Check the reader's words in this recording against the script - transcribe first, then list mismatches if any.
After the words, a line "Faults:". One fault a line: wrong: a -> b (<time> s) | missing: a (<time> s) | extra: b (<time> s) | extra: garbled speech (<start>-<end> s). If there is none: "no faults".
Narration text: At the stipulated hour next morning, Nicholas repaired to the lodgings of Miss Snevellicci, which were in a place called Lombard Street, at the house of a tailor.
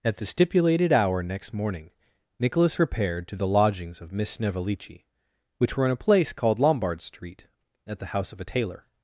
At the stipulated hour next morning, Nicholas repaired to the lodgings of Miss Snevellicci, which were in a place called Lombard Street, at the house of a tailor.
Faults:
no faults